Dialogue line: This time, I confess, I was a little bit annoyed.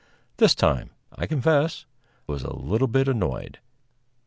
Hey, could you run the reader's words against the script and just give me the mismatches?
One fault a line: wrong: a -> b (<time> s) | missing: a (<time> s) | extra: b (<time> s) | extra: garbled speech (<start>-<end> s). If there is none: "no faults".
missing: I (1.9 s)